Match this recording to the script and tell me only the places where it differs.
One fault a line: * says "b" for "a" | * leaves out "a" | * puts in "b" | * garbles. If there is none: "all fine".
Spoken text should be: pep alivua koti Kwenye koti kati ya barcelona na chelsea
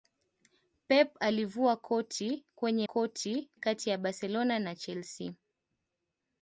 all fine